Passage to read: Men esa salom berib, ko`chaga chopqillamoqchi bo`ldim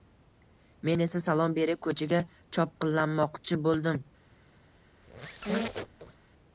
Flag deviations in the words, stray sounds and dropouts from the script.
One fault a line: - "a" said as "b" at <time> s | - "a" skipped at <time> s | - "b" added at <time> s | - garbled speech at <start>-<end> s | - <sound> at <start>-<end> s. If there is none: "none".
- squeak at 5.0-6.3 s